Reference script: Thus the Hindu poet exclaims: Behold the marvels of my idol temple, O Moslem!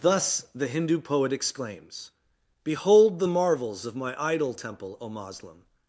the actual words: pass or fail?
pass